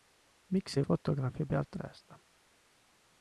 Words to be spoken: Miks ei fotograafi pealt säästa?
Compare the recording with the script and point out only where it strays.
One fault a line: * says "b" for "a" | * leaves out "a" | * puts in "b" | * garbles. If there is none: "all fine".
all fine